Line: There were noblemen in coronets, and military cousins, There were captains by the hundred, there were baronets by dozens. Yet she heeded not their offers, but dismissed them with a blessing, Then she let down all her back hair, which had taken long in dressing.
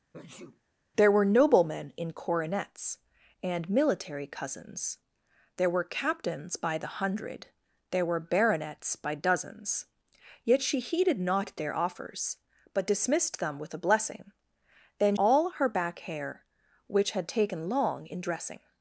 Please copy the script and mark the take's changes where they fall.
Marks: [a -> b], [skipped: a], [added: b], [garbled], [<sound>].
[sneeze] There were noblemen in coronets, and military cousins, There were captains by the hundred, there were baronets by dozens. Yet she heeded not their offers, but dismissed them with a blessing, Then [skipped: she let down] all her back hair, which had taken long in dressing.